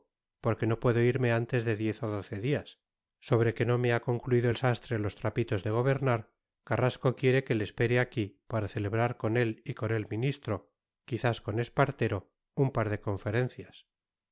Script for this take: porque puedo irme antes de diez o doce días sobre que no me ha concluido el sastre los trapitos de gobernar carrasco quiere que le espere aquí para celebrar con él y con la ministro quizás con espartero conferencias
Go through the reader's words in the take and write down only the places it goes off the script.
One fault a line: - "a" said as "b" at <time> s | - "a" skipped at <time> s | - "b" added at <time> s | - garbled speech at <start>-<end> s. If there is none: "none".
- "no" added at 0.7 s
- "la" said as "el" at 9.9 s
- "un par de" added at 12.5 s